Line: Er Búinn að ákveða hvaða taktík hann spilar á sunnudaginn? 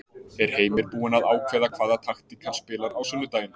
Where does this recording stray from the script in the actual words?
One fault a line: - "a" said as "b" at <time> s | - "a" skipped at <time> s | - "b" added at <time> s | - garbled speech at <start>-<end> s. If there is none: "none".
- "Heimir" added at 0.6 s